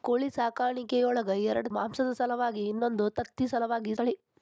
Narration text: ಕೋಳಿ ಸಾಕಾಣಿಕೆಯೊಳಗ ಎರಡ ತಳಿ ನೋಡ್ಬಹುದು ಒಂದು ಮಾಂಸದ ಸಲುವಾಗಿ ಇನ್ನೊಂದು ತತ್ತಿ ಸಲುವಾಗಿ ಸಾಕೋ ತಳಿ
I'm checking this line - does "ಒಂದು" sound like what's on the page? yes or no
no